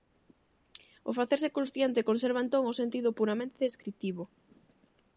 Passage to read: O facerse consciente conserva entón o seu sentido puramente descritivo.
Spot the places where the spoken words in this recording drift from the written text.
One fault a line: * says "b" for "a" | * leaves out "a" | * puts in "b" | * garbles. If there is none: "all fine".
* leaves out "seu"